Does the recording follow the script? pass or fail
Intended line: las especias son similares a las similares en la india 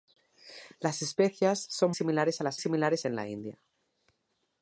pass